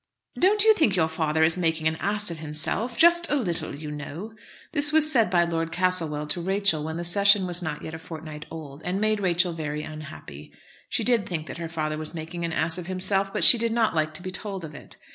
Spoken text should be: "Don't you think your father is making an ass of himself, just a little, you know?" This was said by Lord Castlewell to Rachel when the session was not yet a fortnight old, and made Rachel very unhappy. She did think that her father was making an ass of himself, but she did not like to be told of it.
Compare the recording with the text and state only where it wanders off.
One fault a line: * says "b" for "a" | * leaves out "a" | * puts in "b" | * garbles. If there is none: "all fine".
all fine